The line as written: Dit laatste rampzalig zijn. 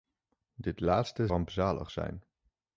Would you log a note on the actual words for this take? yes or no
no